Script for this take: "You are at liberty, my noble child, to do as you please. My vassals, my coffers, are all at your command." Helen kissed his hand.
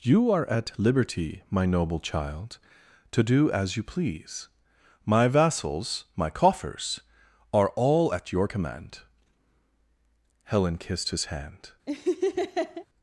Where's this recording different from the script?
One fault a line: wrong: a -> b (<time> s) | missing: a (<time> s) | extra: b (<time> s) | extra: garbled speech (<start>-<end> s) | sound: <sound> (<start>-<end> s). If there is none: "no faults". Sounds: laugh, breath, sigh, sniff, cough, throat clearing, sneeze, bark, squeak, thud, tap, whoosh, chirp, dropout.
sound: laugh (11.9-12.9 s)